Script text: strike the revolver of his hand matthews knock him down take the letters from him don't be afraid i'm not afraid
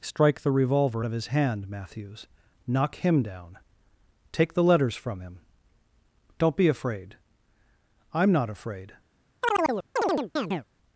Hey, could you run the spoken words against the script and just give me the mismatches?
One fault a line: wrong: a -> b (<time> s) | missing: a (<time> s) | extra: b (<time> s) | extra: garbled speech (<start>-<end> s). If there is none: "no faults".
no faults